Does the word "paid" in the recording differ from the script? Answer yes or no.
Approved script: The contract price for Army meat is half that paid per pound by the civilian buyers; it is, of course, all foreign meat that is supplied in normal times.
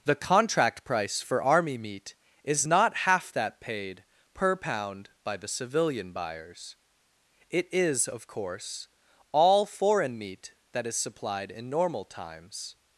no